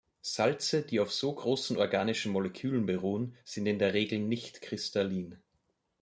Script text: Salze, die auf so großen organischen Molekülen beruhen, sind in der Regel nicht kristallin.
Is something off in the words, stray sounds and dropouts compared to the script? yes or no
no